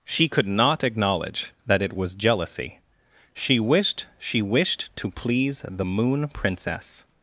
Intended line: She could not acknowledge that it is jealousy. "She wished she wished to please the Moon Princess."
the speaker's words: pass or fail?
fail